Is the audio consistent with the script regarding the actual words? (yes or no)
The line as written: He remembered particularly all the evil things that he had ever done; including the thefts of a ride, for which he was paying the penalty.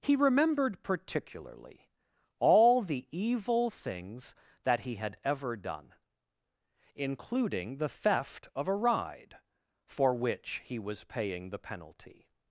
no